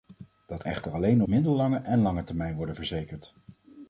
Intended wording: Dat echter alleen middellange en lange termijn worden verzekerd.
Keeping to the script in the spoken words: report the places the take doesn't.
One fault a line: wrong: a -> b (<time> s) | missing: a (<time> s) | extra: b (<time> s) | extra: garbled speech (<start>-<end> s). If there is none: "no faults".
no faults